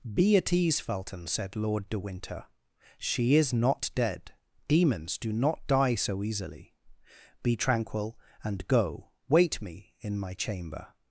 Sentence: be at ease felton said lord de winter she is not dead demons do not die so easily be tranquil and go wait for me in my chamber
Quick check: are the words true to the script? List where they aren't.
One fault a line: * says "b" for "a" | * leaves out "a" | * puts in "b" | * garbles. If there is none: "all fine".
* leaves out "for"